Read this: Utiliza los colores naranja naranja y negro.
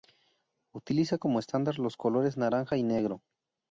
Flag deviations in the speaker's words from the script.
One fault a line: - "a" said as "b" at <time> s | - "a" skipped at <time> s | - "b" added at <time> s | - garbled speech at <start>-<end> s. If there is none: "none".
- "como estándar" added at 1.2 s
- "naranja" skipped at 2.8 s